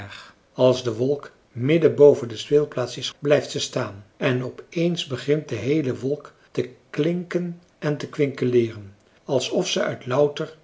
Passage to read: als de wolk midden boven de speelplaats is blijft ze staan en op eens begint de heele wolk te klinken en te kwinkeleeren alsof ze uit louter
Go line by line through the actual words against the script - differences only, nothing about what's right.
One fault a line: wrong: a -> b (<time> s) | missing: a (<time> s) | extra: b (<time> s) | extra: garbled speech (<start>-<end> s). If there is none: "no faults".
no faults